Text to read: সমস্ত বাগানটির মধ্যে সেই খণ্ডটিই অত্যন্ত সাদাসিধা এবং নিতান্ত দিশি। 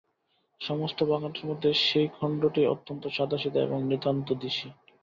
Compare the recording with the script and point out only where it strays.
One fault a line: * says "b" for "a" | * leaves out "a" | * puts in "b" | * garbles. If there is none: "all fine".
all fine